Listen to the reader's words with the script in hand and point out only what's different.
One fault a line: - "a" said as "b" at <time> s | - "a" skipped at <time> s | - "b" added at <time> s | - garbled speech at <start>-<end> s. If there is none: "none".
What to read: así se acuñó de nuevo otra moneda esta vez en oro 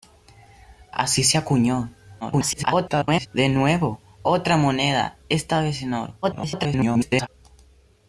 - garbled speech at 2.2-3.3 s
- garbled speech at 6.2-7.3 s